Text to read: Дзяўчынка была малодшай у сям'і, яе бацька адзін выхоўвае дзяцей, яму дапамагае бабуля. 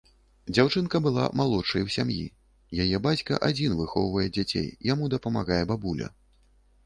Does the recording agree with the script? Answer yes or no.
yes